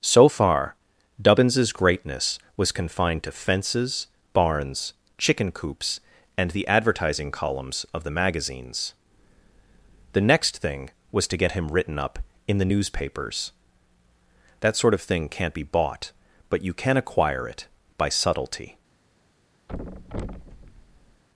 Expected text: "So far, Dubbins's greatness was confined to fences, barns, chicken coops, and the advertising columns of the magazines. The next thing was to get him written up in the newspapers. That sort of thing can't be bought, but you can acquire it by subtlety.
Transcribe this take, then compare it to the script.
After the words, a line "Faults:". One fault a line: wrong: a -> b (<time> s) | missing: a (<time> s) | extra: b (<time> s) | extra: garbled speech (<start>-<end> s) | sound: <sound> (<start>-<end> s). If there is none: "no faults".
"So far, Dubbins's greatness was confined to fences, barns, chicken coops, and the advertising columns of the magazines. The next thing was to get him written up in the newspapers. That sort of thing can't be bought, but you can acquire it by subtlety.
Faults:
sound: thud (19.7-21.2 s)